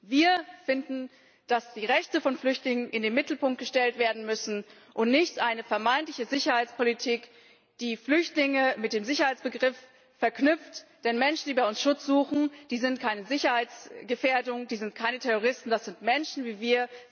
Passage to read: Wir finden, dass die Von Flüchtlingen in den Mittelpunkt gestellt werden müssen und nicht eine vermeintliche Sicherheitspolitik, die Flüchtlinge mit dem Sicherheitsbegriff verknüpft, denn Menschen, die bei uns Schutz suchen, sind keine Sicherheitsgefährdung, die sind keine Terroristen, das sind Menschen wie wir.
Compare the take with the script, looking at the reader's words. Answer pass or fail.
fail